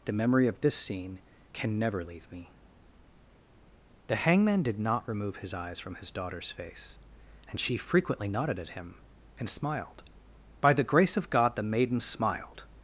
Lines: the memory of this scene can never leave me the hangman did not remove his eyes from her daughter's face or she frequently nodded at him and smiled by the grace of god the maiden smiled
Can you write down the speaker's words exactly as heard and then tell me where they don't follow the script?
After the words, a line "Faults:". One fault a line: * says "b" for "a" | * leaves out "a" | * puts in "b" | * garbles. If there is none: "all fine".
the memory of this scene can never leave me the hangman did not remove his eyes from his daughter's face and she frequently nodded at him and smiled by the grace of god the maiden smiled
Faults:
* says "his" for "her"
* says "and" for "or"